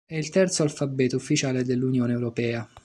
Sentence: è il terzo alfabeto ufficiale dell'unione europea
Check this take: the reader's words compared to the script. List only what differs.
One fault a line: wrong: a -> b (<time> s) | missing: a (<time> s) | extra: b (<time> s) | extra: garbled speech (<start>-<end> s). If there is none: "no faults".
no faults